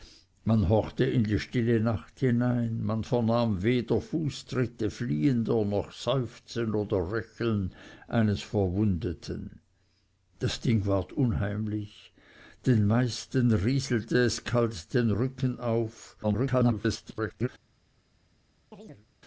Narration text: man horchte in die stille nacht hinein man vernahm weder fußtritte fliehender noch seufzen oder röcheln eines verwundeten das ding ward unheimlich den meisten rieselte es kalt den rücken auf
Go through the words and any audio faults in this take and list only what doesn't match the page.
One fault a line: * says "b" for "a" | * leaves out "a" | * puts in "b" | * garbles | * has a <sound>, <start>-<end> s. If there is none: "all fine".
* garbles
* has a chirp, 18.7-19.1 s